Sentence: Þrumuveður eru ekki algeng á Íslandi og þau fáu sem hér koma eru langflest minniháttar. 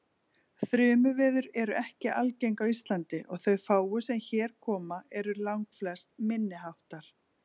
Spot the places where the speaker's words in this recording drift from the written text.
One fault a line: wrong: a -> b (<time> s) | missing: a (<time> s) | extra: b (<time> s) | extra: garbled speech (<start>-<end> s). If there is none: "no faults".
no faults